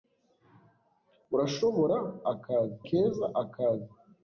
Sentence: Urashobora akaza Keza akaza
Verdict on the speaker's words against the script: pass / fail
pass